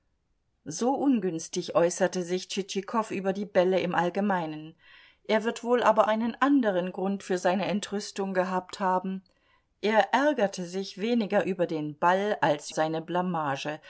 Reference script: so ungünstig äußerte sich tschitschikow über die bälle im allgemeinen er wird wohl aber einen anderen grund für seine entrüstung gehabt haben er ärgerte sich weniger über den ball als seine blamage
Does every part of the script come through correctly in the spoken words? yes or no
yes